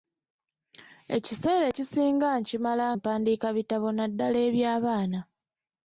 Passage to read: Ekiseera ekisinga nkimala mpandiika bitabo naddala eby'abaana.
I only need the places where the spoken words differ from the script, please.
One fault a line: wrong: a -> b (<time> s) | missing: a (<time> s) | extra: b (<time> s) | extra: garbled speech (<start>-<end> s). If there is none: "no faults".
no faults